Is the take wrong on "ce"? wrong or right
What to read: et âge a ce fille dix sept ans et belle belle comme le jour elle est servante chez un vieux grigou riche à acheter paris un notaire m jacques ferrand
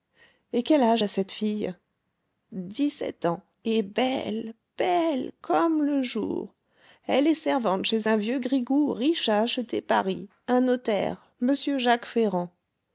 wrong